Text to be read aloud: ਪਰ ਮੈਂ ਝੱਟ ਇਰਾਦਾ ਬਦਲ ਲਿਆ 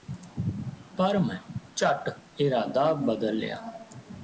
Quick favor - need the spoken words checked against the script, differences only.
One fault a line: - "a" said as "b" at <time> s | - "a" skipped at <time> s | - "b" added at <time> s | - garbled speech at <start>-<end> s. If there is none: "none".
none